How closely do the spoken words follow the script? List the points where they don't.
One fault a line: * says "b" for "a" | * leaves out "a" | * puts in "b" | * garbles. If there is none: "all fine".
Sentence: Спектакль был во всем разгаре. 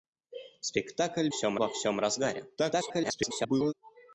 * says "всем" for "был"
* garbles